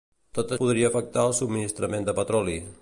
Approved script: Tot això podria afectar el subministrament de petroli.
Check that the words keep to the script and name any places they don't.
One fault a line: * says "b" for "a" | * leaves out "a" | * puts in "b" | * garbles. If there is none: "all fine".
* leaves out "això"